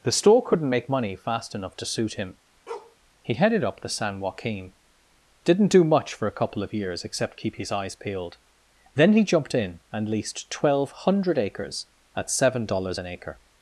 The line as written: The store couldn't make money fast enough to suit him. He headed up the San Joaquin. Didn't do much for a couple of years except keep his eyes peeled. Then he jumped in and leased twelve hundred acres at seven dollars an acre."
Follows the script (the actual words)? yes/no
yes